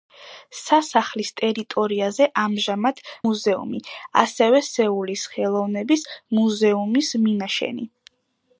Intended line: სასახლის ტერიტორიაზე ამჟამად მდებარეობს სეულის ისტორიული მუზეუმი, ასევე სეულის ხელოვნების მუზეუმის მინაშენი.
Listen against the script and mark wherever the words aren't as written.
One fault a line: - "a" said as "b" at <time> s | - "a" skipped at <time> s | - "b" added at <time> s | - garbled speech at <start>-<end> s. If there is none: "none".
- "მდებარეობს სეულის ისტორიული" skipped at 3.0 s